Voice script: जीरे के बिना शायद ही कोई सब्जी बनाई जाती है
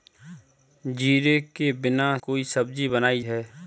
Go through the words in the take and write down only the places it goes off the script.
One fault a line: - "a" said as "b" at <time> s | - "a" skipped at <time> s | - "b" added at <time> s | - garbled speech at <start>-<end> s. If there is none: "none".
- "शायद ही" skipped at 2.2 s
- "जाती" skipped at 3.2 s